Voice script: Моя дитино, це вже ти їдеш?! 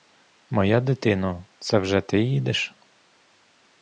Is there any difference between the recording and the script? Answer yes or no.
no